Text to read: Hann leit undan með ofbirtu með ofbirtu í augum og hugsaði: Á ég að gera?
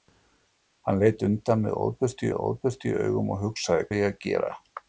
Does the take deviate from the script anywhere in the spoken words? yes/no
no